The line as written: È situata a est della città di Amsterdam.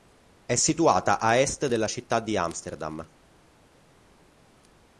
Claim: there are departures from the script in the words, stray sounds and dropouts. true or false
false